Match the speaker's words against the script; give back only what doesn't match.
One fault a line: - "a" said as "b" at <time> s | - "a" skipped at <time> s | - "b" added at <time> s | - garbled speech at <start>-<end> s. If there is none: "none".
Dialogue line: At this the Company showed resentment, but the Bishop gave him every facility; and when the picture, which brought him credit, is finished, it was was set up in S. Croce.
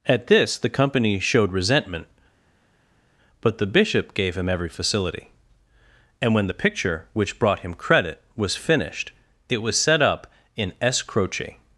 - "is" said as "was" at 8.3 s
- "was" skipped at 9.8 s